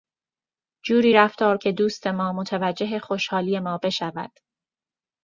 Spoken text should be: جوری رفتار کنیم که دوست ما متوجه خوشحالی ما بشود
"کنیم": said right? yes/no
no